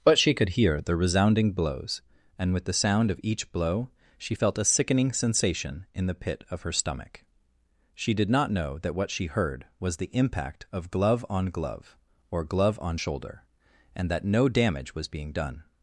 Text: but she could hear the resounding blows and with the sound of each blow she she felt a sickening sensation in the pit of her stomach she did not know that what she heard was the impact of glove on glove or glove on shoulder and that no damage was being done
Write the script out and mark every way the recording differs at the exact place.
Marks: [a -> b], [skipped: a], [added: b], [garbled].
but she could hear the resounding blows and with the sound of each blow she [skipped: she] felt a sickening sensation in the pit of her stomach she did not know that what she heard was the impact of glove on glove or glove on shoulder and that no damage was being done